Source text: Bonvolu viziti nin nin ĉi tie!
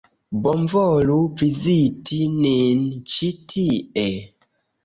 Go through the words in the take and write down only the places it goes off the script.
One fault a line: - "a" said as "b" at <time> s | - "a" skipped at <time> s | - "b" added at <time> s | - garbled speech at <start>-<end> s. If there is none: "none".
- "nin" skipped at 2.8 s